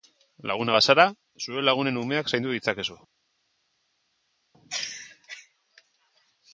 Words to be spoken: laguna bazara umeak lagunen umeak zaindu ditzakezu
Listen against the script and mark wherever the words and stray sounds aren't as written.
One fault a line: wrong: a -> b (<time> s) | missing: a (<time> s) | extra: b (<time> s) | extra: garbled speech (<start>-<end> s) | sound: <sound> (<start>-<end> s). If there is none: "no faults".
wrong: umeak -> zure (1.4 s)